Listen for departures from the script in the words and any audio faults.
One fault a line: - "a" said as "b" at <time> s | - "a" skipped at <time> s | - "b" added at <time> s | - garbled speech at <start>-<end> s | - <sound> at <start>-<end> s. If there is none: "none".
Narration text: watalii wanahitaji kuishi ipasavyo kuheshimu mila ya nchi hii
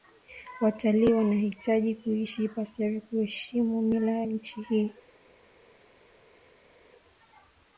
none